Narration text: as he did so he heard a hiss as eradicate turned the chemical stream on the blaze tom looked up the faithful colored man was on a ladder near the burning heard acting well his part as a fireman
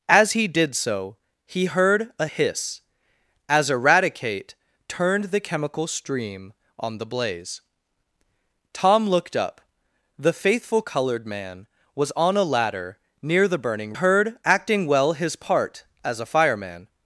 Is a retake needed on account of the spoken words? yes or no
no